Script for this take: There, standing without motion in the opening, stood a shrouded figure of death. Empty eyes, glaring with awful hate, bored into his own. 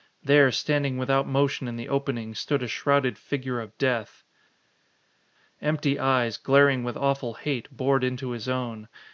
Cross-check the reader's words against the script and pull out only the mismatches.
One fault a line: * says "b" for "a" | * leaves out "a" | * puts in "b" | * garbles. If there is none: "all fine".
all fine